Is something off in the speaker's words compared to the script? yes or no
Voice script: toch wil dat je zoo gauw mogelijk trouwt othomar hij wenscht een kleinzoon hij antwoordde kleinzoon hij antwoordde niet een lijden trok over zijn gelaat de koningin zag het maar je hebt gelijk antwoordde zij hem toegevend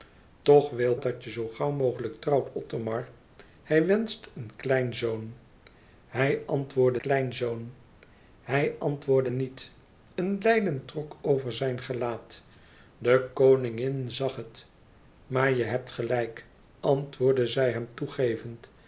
no